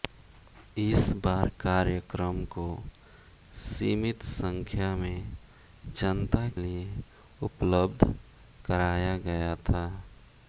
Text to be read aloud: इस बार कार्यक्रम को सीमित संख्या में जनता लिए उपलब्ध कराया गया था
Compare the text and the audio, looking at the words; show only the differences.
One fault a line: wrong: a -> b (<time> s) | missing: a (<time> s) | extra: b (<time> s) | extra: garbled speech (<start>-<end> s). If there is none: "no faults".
no faults